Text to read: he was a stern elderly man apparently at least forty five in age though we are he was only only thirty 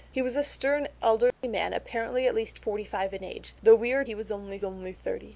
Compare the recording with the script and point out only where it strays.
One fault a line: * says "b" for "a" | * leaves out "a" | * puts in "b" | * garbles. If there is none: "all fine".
all fine